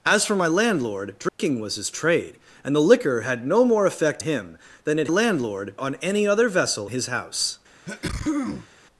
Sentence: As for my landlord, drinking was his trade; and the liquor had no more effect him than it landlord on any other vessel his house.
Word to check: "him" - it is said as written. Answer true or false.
true